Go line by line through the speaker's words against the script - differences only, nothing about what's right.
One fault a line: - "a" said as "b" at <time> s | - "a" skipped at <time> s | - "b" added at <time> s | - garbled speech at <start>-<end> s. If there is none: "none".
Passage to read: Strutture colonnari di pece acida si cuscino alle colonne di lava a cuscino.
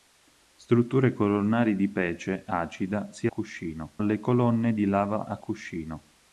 none